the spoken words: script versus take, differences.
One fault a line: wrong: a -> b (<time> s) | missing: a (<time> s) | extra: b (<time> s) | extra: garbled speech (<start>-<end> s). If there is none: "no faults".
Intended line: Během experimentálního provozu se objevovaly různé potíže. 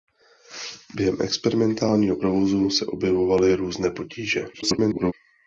extra: garbled speech (4.5-5.1 s)